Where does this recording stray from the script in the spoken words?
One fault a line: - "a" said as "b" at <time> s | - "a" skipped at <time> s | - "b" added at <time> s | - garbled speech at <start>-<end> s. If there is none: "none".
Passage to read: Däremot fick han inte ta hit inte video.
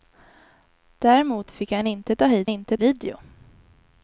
none